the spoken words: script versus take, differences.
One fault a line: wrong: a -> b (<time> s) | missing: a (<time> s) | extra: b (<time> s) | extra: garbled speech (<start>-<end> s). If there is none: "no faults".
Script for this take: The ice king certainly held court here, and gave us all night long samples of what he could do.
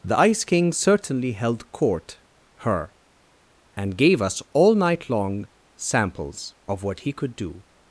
wrong: here -> her (2.6 s)